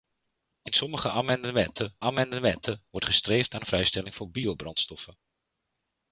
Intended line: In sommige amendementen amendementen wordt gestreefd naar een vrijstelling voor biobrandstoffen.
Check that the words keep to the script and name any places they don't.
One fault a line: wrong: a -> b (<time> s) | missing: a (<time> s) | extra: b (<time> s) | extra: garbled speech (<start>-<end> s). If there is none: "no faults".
no faults